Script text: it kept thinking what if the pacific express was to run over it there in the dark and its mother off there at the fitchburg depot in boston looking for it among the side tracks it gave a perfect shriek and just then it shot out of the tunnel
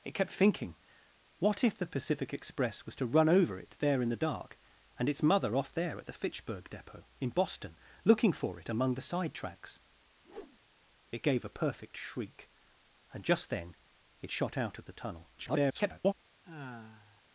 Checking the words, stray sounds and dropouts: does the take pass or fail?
fail